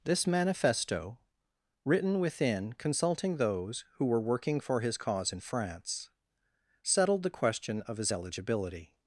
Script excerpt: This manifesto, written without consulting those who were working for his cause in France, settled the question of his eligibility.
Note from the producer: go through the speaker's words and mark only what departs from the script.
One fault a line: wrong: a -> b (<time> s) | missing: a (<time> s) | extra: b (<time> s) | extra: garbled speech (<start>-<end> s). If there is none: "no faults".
wrong: without -> within (2.2 s)